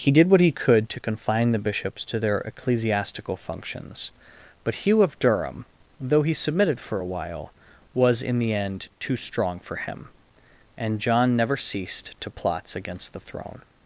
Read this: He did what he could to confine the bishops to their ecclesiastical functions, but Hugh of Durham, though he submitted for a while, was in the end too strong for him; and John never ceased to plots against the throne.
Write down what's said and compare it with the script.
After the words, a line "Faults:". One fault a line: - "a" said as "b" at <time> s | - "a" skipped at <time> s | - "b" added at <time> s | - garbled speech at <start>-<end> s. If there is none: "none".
He did what he could to confine the bishops to their ecclesiastical functions, but Hugh of Durham, though he submitted for a while, was in the end too strong for him; and John never ceased to plots against the throne.
Faults:
none